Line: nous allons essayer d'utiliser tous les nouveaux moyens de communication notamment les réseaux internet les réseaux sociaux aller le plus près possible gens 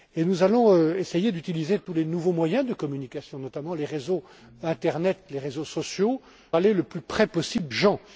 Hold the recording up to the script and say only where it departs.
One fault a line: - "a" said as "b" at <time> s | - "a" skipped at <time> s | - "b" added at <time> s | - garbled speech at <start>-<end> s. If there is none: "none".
none